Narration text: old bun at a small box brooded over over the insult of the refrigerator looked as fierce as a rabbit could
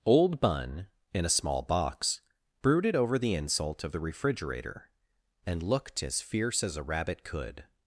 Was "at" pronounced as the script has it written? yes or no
no